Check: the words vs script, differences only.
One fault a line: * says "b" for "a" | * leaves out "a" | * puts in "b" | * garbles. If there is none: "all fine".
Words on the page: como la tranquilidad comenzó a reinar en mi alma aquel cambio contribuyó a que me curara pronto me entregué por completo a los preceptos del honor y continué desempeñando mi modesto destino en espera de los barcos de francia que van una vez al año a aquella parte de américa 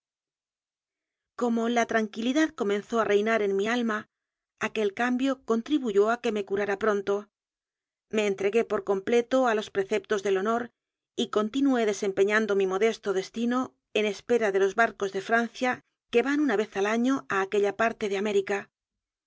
all fine